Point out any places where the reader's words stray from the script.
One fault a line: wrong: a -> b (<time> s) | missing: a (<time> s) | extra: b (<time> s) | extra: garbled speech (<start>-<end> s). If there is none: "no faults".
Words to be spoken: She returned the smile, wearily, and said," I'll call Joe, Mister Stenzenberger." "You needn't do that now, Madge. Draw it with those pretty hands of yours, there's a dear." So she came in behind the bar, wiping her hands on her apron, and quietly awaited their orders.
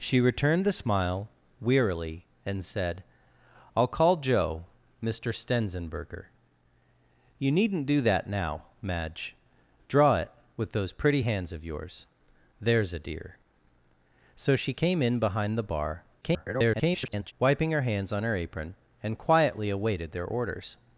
extra: garbled speech (16.2-17.3 s)